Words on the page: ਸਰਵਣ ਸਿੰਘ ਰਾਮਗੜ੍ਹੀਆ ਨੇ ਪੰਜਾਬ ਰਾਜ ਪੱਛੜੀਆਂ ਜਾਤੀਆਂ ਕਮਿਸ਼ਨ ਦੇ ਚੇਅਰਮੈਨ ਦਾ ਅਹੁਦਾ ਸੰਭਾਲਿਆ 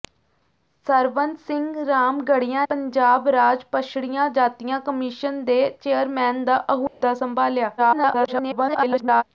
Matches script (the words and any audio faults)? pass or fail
fail